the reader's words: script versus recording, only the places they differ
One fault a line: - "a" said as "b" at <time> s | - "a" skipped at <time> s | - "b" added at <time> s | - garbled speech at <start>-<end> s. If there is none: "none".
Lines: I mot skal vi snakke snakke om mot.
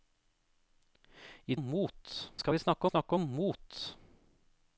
none